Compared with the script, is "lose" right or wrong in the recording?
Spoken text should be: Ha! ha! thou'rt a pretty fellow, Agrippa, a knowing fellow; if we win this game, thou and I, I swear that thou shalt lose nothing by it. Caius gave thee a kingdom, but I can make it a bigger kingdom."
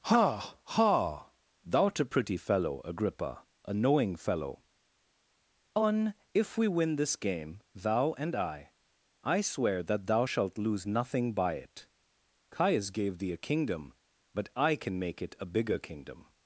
right